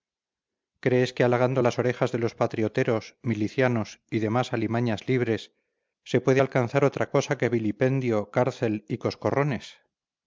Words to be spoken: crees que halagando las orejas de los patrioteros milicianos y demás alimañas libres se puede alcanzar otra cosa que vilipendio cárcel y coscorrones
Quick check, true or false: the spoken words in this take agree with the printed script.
true